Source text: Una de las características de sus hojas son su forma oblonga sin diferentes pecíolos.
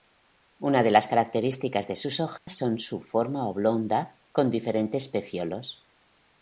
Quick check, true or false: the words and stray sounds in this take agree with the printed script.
false